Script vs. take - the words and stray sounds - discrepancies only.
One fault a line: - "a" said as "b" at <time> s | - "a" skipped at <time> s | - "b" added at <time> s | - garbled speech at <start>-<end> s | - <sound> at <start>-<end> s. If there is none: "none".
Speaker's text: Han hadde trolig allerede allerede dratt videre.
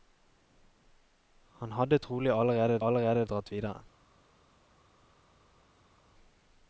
none